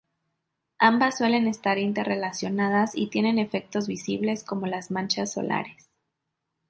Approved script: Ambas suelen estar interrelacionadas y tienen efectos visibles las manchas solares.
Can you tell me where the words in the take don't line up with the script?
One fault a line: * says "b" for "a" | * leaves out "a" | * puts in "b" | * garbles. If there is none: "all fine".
* puts in "como"